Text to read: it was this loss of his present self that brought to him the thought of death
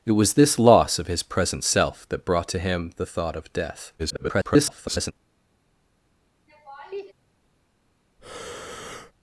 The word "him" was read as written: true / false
true